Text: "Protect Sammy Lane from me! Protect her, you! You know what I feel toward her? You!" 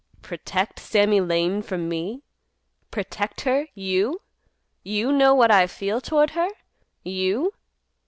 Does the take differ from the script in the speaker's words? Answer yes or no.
no